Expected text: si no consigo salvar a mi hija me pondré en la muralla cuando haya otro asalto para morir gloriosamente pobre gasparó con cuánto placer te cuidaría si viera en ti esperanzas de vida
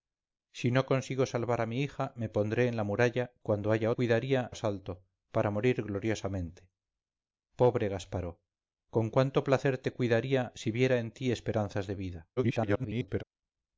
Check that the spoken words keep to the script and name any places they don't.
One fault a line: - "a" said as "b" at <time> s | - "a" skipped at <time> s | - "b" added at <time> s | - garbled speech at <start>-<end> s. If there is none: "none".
- "otro" said as "cuidaría" at 3.9 s
- garbled speech at 12.4-13.2 s